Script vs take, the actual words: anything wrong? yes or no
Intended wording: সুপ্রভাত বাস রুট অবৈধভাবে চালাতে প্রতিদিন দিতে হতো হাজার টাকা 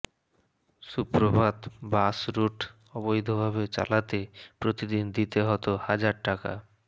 no